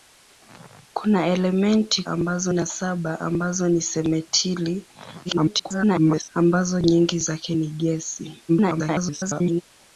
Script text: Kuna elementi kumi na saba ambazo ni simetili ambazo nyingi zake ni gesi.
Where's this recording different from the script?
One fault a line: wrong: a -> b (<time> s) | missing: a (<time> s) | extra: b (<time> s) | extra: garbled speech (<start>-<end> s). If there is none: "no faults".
wrong: kumi -> ambazo (2.1 s)
extra: garbled speech (5.2-6.3 s)
extra: garbled speech (8.5-9.6 s)